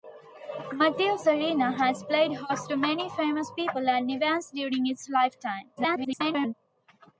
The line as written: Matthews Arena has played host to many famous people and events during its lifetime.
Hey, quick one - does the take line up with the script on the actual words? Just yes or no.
no